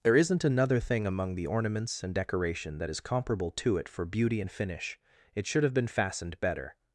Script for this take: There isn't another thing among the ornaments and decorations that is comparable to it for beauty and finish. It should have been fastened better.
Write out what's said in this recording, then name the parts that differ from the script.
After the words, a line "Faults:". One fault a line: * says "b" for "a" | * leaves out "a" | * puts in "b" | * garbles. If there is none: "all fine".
There isn't another thing among the ornaments and decoration that is comparable to it for beauty and finish. It should have been fastened better.
Faults:
* says "decoration" for "decorations"